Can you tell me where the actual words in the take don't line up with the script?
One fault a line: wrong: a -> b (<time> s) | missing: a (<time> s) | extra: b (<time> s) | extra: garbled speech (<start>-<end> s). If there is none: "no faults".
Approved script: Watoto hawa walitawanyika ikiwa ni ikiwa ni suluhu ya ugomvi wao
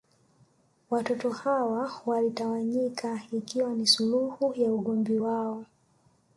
missing: ikiwa ni (3.9 s)